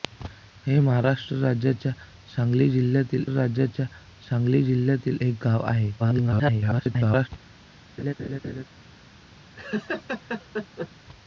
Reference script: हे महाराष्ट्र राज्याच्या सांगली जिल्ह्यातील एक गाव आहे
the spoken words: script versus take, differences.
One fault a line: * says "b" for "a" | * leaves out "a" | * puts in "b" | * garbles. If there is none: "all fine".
* puts in "राज्याच्या सांगली जिल्ह्यातील"
* garbles